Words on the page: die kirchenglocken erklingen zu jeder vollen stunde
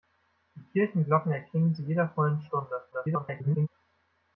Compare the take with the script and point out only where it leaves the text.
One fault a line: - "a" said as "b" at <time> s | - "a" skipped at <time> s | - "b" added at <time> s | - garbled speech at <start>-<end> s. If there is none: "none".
- "zu" skipped at 1.8 s
- garbled speech at 2.9-3.7 s